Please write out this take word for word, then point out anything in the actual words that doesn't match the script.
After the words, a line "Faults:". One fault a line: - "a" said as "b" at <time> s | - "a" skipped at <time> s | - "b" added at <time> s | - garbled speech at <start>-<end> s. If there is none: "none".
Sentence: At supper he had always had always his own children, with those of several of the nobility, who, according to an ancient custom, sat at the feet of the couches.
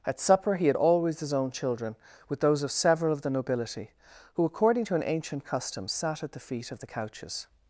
At supper he had always his own children, with those of several of the nobility, who, according to an ancient custom, sat at the feet of the couches.
Faults:
- "had always" skipped at 1.2 s